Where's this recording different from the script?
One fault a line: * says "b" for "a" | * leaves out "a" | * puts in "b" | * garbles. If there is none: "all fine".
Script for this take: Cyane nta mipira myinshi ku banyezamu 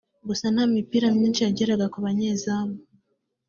* says "Gusa" for "Cyane"
* puts in "yageraga"